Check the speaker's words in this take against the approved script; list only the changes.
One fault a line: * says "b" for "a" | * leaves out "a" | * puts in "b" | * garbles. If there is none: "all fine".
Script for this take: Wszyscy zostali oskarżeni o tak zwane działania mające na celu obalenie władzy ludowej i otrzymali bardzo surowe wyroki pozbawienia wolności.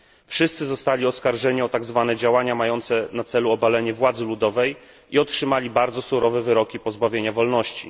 all fine